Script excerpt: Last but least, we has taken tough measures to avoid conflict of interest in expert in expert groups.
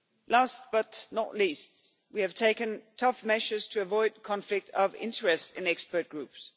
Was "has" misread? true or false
true